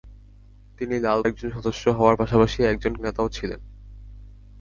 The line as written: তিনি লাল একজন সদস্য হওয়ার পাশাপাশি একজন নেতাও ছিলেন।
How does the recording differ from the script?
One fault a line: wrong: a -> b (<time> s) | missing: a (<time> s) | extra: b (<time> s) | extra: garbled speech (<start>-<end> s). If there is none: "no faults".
no faults